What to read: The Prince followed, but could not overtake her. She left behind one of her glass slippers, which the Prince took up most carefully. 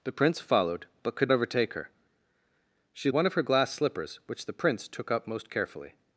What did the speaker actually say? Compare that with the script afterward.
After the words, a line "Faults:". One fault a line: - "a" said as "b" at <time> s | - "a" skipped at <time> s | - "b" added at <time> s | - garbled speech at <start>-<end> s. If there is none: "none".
The Prince followed, but could overtake her. She one of her glass slippers, which the Prince took up most carefully.
Faults:
- "not" skipped at 1.3 s
- "left behind" skipped at 3.1 s